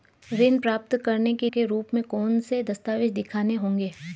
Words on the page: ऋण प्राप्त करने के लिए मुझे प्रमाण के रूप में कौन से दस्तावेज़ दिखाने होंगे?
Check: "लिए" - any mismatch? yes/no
yes